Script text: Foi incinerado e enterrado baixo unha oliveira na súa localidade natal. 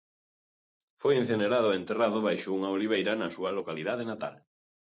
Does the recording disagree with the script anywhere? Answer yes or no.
no